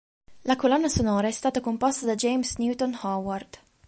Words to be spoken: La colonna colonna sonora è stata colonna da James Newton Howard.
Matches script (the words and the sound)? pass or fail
fail